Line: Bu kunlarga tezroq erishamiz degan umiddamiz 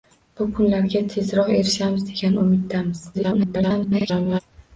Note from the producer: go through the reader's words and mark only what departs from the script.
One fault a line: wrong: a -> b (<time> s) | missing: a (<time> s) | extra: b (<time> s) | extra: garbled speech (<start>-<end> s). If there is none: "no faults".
extra: garbled speech (3.1-4.4 s)